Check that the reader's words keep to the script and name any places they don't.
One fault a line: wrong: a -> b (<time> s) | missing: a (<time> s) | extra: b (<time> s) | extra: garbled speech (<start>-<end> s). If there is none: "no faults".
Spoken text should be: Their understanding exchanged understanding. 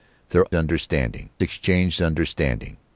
no faults